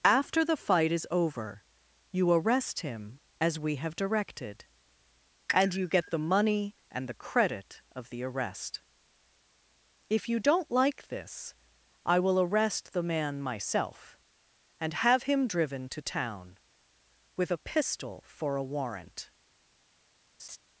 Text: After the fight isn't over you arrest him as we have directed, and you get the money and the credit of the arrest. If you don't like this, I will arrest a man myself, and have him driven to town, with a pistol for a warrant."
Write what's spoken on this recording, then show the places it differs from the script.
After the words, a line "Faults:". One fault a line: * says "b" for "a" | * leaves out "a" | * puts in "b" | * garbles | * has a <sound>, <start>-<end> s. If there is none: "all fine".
After the fight is over you arrest him as we have directed, and you get the money and the credit of the arrest. If you don't like this, I will arrest the man myself, and have him driven to town, with a pistol for a warrant."
Faults:
* says "is" for "isn't"
* says "the" for "a"
* has a laugh, 20.4-20.6 s